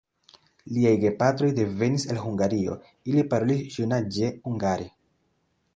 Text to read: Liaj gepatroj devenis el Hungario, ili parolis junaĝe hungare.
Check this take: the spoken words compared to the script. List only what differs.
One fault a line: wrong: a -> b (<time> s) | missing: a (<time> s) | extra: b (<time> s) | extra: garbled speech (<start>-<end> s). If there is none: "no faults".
no faults